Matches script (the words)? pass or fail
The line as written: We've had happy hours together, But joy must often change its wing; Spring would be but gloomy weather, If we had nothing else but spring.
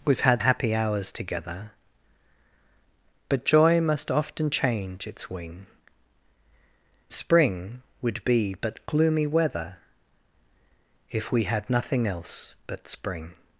pass